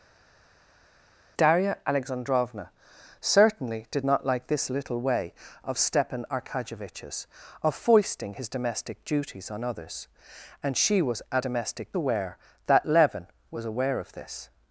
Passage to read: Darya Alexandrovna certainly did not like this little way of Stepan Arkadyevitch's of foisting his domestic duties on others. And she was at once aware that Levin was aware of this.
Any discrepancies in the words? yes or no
yes